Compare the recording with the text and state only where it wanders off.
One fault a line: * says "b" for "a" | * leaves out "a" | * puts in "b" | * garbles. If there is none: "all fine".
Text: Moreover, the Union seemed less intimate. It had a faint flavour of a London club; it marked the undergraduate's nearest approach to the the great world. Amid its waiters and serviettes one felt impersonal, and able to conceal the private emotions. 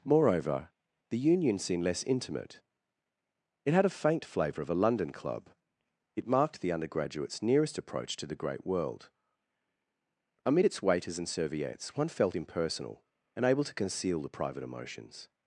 * leaves out "the"